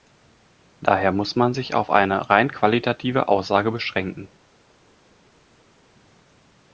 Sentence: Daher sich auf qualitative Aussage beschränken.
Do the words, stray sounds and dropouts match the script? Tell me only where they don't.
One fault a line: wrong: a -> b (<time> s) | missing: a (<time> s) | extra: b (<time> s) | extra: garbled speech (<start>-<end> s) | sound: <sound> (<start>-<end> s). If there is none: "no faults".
extra: muss man (1.1 s)
extra: eine rein (1.9 s)